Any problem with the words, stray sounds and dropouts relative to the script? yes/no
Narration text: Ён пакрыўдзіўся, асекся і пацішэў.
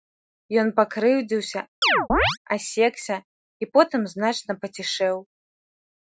yes